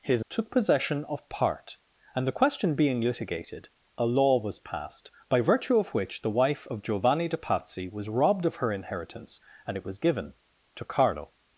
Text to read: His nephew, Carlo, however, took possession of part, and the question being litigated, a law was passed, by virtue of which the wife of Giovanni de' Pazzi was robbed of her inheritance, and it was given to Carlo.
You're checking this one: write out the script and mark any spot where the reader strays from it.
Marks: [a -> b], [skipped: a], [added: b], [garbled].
His [skipped: nephew, Carlo, however,] took possession of part, and the question being litigated, a law was passed, by virtue of which the wife of Giovanni de' Pazzi was robbed of her inheritance, and it was given to Carlo.